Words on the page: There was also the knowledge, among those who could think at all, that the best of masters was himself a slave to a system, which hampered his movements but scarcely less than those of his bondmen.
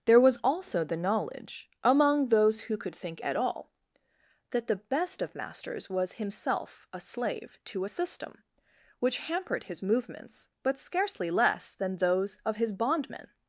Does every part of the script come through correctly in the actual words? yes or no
yes